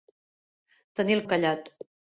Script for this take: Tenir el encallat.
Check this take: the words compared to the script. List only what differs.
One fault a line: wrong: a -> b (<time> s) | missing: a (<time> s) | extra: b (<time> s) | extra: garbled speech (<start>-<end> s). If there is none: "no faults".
no faults